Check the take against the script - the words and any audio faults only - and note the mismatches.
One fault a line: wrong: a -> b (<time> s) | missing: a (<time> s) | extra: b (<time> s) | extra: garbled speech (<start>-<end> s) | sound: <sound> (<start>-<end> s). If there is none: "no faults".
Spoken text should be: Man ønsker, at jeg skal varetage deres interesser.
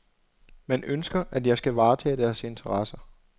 no faults